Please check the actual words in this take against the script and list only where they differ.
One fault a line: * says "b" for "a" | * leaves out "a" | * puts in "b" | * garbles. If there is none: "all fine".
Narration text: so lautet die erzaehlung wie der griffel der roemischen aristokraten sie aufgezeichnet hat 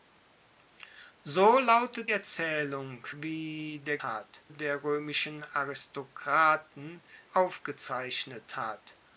* leaves out "die"
* says "hat" for "griffel"
* leaves out "sie"